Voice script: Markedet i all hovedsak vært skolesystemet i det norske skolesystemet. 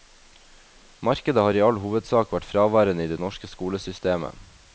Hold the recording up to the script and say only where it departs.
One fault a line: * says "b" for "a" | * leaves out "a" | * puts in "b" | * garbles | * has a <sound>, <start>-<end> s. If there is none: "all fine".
* puts in "har"
* says "fraværende" for "skolesystemet"